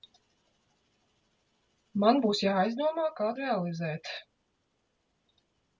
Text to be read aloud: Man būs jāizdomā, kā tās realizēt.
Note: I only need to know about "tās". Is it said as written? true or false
false